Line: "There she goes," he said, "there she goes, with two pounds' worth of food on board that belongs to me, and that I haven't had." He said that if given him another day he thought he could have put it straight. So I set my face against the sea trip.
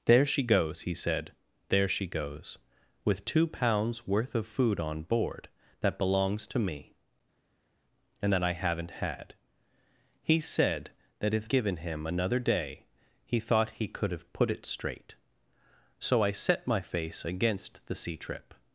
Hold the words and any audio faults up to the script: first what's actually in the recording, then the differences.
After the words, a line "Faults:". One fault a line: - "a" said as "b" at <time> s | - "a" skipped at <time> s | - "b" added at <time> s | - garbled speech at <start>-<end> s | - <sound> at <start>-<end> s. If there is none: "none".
"There she goes," he said, "there she goes, with two pounds' worth of food on board that belongs to me, and that I haven't had." He said that if given him another day he thought he could have put it straight. So I set my face against the sea trip.
Faults:
none